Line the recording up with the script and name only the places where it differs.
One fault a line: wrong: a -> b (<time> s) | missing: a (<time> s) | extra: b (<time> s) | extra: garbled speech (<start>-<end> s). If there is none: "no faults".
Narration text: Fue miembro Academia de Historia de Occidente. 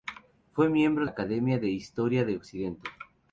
no faults